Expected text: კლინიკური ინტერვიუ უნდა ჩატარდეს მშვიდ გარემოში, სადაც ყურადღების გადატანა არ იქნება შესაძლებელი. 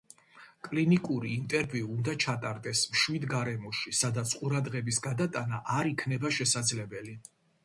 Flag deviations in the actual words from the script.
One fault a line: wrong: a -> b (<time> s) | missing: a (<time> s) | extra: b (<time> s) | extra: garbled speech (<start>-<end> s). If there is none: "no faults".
no faults